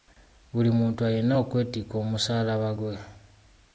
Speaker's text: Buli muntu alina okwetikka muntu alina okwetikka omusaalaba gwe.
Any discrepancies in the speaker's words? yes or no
yes